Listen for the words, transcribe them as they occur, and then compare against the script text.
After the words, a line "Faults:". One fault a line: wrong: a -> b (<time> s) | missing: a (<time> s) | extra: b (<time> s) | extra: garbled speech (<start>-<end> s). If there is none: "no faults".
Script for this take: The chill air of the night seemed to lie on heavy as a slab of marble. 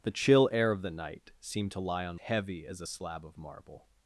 The chill air of the night seemed to lie on heavy as a slab of marble.
Faults:
no faults